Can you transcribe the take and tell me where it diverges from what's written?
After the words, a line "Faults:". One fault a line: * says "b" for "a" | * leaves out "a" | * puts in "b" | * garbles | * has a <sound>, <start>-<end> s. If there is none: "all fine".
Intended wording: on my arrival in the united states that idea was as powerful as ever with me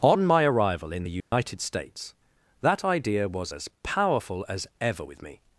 on my arrival in the united states that idea was as powerful as ever with me
Faults:
* has a dropout, 1.2-1.3 s